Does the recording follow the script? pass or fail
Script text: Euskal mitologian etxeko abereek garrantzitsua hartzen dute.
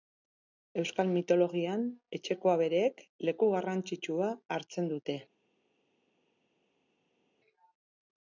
fail